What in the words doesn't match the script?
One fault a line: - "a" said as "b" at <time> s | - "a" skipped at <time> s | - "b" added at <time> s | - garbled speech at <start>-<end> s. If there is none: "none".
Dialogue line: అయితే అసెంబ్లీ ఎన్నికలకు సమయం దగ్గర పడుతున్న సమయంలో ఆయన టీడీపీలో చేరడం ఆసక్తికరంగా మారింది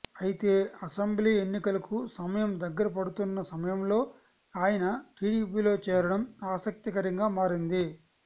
none